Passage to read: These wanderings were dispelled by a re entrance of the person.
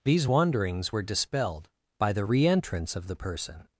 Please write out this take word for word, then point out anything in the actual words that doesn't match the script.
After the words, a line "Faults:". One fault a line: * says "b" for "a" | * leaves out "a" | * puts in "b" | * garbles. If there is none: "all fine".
These wanderings were dispelled by the re entrance of the person.
Faults:
* says "the" for "a"